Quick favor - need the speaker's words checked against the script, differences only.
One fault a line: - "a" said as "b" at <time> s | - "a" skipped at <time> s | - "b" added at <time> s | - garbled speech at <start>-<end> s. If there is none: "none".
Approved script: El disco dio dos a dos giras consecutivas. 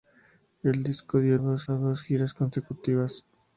none